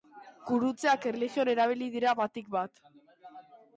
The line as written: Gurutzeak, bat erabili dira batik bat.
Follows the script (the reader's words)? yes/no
no